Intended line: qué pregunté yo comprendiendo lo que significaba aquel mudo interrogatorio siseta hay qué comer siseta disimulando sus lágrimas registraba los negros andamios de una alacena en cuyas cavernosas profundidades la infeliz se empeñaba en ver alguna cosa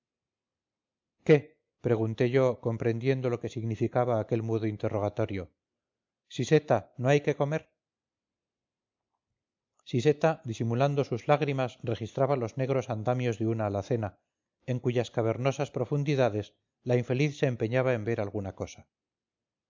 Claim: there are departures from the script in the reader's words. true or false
true